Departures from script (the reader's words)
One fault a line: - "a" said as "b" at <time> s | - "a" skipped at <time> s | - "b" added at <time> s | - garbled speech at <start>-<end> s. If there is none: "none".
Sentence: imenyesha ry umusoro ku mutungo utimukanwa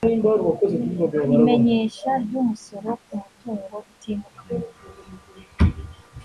none